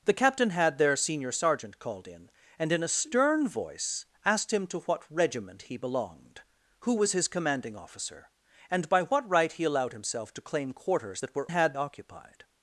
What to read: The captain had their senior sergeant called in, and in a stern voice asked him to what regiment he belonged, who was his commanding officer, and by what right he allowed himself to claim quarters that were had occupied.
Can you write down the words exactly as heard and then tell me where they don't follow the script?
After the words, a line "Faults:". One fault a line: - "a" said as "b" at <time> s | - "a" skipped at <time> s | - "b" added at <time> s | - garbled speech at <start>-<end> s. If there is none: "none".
The captain had their senior sergeant called in, and in a stern voice asked him to what regiment he belonged, who was his commanding officer, and by what right he allowed himself to claim quarters that were had occupied.
Faults:
none